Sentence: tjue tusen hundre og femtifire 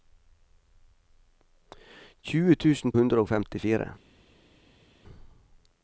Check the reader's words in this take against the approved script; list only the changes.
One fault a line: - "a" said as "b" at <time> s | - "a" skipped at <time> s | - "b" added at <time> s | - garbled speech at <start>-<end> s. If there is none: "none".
none